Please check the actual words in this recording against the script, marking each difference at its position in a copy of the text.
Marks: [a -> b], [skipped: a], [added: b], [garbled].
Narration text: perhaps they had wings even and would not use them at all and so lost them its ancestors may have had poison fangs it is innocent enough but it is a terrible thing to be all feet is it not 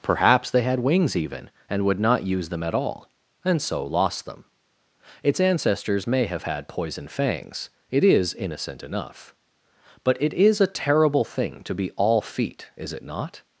perhaps they had wings even and would not use them at all and so lost them its ancestors may have had poison fangs it is innocent enough but it is a terrible thing to be all feet is it not